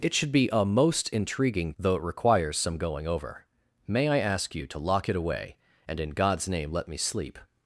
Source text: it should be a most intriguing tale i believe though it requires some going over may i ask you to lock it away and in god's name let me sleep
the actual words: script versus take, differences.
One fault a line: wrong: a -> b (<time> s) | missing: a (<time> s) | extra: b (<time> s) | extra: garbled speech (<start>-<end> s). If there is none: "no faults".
missing: tale i believe (1.7 s)